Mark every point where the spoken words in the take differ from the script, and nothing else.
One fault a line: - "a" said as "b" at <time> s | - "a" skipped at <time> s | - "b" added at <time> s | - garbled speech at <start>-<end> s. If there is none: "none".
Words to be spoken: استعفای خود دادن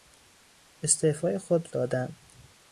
none